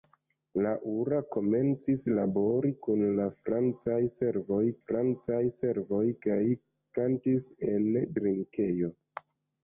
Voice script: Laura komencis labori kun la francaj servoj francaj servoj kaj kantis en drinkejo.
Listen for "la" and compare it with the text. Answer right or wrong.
right